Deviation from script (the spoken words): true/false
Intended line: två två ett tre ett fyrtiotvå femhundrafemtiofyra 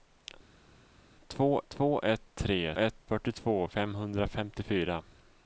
false